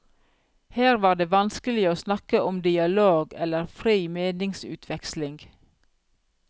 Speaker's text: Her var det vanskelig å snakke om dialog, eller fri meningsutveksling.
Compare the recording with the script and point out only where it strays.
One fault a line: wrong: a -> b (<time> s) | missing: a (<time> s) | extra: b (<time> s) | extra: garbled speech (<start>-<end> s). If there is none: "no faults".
no faults